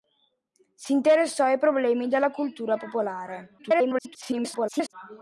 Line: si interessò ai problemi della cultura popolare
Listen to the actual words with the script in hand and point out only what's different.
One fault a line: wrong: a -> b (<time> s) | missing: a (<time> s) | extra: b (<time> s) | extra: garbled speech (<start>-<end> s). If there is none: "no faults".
extra: garbled speech (3.6-4.9 s)